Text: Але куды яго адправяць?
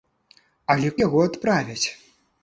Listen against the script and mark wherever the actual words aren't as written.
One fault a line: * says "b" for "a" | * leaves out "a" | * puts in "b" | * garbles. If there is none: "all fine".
* leaves out "куды"